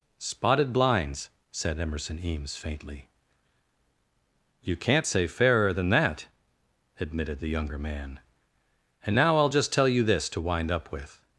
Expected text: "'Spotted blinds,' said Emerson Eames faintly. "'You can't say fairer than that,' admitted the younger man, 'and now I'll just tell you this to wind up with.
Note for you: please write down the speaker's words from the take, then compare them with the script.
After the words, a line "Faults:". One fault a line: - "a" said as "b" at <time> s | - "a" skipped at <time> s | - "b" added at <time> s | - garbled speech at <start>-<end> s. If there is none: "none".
"'Spotted blinds,' said Emerson Eames faintly. "'You can't say fairer than that,' admitted the younger man, 'and now I'll just tell you this to wind up with.
Faults:
none